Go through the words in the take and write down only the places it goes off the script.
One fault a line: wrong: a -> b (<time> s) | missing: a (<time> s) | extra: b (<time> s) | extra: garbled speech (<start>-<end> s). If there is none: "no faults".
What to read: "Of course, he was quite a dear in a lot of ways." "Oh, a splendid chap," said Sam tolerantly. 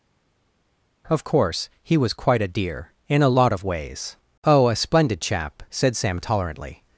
no faults